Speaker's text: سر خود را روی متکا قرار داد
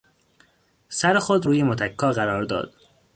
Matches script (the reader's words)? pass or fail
fail